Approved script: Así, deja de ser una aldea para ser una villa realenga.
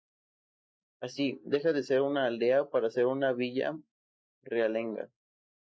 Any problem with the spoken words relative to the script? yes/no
no